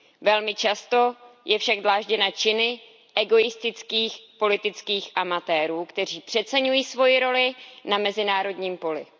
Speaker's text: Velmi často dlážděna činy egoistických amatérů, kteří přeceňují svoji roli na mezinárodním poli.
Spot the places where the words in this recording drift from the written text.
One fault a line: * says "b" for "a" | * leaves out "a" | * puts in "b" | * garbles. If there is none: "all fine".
* puts in "je však"
* puts in "politických"